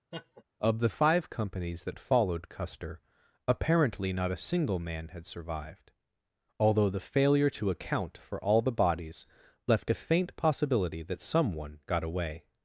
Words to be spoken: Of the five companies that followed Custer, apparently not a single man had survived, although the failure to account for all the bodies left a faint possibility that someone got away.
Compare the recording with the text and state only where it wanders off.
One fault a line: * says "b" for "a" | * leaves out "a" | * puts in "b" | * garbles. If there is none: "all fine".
all fine